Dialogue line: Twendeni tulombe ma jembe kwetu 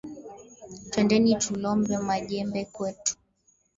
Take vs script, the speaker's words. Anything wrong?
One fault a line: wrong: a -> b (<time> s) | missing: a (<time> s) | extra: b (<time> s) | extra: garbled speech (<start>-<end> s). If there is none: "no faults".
no faults